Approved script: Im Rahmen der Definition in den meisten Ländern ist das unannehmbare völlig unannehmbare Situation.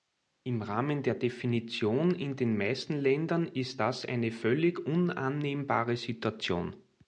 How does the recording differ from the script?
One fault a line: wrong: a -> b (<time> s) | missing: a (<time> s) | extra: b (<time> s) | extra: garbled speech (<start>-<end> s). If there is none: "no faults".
wrong: unannehmbare -> eine (4.0 s)